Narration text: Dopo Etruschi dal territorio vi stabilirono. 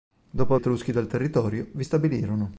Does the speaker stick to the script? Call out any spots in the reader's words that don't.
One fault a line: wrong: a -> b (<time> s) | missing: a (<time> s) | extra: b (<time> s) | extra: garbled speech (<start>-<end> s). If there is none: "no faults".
no faults